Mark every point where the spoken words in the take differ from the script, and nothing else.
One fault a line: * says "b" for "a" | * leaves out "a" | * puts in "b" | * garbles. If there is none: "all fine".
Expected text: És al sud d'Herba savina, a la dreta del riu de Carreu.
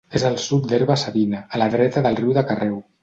all fine